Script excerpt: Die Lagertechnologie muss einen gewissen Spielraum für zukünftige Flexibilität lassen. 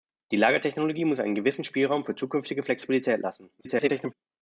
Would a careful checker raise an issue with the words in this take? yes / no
yes